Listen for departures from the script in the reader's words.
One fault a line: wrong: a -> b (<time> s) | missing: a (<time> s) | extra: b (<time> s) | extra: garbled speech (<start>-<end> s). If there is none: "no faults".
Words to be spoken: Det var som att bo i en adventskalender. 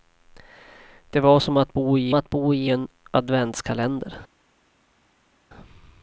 extra: att bo i (2.1 s)